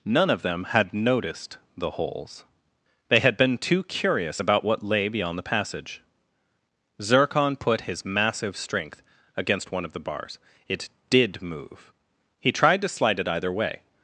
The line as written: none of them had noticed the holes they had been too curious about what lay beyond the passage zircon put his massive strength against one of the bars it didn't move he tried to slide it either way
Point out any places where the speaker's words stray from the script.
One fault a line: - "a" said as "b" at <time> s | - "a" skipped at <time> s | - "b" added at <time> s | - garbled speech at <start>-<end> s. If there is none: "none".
- "didn't" said as "did" at 11.1 s